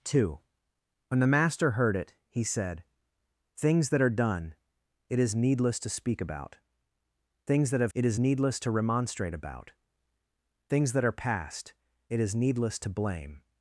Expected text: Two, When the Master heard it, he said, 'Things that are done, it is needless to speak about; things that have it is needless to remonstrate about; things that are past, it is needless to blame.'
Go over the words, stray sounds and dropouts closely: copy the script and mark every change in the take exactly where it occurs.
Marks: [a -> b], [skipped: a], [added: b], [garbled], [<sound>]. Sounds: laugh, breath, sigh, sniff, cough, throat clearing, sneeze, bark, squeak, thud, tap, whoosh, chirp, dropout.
Two, When the Master heard it, he said, 'Things that are done, it is needless to speak about; things that have it is needless to remonstrate about; things that are past, it is needless to blame.'